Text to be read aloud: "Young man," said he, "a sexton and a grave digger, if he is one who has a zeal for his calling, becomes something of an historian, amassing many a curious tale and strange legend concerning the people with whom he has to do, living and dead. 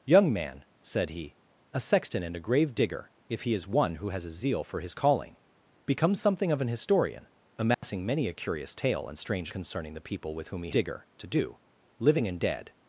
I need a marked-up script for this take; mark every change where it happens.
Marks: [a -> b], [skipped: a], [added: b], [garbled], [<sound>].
"Young man," said he, "a sexton and a grave digger, if he is one who has a zeal for his calling, becomes something of an historian, amassing [dropout] many a curious tale and strange [skipped: legend] concerning the people with whom he [has -> digger] to do, living and dead.